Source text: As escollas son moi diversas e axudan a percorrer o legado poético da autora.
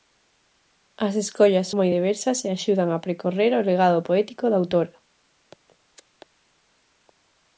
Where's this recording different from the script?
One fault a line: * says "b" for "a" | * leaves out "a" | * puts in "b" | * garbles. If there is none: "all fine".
* leaves out "son"